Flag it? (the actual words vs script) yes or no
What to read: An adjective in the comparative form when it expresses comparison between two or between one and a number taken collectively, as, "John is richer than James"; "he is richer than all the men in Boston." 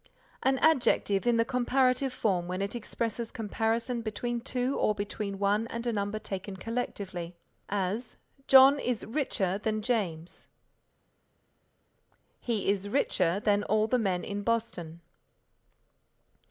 no